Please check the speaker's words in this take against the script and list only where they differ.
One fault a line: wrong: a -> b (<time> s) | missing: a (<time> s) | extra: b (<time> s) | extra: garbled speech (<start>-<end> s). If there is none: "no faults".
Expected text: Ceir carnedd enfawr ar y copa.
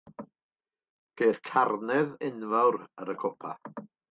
no faults